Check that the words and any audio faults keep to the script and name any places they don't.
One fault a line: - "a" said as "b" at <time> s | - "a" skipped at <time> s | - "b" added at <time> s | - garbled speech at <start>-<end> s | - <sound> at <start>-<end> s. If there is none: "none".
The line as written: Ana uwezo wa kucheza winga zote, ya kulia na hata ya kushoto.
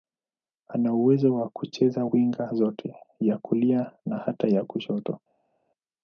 none